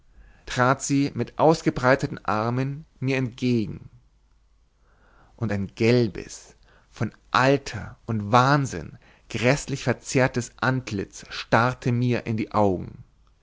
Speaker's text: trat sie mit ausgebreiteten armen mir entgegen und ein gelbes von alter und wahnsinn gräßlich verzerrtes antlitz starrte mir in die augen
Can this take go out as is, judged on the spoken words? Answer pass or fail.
pass